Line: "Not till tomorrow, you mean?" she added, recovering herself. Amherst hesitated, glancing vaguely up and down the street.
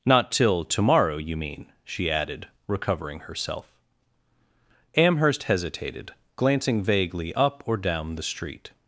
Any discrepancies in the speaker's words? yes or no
yes